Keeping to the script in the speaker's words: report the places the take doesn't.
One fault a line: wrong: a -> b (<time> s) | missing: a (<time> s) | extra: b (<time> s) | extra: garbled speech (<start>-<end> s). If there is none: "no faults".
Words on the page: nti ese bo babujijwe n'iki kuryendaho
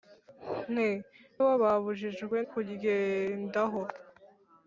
missing: ese (0.9 s)
missing: n'iki (2.4 s)